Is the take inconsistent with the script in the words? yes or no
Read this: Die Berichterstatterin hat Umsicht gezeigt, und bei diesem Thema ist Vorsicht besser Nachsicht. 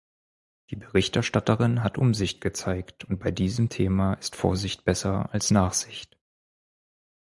yes